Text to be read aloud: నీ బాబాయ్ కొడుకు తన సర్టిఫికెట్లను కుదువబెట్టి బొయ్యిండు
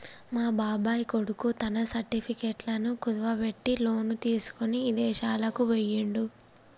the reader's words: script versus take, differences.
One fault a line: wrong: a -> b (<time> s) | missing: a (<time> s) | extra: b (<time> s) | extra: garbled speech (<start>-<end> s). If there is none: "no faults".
wrong: నీ -> మా (0.3 s)
extra: లోను తీసుకొని ఇదేశాలకు (3.8 s)